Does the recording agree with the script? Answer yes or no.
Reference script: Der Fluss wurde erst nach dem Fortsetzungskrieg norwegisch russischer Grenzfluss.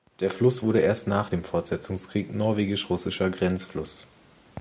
yes